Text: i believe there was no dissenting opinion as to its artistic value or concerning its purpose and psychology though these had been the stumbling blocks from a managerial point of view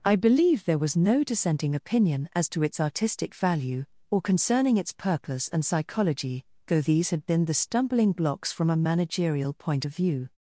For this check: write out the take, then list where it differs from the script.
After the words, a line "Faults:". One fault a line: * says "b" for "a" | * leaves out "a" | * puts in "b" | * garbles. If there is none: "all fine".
i believe there was no dissenting opinion as to its artistic value or concerning its purpose and psychology though these had been the stumbling blocks from a managerial point of view
Faults:
all fine